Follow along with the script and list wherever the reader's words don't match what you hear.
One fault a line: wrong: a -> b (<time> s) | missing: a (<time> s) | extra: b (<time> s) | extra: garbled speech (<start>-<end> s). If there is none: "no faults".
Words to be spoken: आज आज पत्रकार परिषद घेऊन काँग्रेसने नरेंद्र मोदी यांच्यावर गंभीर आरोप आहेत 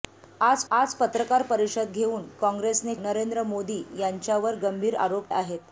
no faults